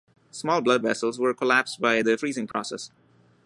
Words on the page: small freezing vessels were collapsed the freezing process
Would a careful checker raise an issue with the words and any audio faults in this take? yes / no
yes